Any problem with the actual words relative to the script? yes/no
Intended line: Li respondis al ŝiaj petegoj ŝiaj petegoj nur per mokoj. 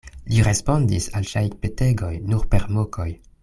yes